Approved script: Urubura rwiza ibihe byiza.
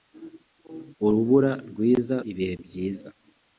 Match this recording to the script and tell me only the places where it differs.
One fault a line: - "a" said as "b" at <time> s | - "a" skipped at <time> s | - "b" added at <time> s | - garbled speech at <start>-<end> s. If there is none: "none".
none